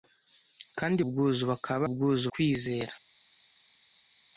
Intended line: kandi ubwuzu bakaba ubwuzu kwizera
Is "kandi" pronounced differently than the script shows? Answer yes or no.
no